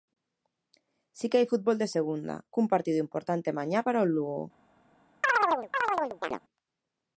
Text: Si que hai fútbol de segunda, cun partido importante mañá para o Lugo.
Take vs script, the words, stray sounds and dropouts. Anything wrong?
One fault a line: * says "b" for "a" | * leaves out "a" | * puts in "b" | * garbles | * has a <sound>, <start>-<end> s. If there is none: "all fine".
* has a chirp, 5.2-6.4 s